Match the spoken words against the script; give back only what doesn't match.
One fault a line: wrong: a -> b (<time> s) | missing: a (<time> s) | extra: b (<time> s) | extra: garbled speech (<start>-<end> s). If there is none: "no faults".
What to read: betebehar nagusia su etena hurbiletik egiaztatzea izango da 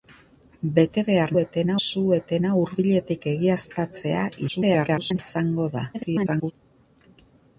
wrong: nagusia -> etena (1.4 s)
extra: garbled speech (4.5-5.2 s)
extra: garbled speech (5.9-6.5 s)